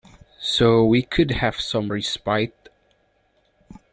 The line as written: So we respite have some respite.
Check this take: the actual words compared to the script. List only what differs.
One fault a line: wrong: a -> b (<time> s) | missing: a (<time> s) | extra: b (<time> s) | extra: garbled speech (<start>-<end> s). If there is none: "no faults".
wrong: respite -> could (1.0 s)